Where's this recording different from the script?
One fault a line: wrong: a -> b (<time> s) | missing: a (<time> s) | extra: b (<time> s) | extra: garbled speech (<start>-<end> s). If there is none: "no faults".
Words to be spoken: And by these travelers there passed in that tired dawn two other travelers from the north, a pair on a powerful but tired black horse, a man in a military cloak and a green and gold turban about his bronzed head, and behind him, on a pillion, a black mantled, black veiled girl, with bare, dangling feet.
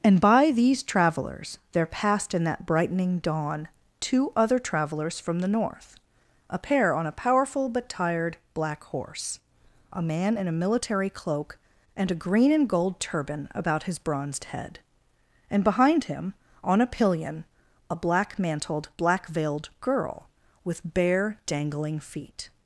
wrong: tired -> brightening (2.6 s)